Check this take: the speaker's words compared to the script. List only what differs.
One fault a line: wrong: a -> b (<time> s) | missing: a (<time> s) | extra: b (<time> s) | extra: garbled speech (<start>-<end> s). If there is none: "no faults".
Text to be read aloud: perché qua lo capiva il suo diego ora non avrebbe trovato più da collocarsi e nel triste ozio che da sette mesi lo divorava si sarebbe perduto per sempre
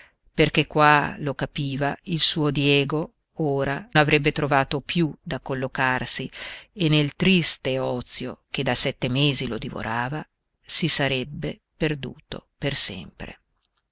missing: non (3.9 s)